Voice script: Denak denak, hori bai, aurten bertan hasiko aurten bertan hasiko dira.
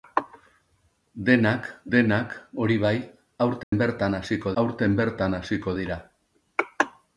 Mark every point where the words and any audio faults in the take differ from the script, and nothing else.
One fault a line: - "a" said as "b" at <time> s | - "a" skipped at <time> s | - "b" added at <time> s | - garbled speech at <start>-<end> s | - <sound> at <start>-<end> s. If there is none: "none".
- dropout at 3.6-3.7 s